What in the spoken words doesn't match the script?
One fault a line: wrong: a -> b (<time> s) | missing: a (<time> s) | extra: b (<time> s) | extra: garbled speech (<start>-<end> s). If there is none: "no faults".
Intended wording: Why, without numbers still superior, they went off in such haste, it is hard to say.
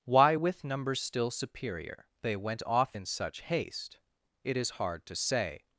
wrong: without -> with (0.3 s)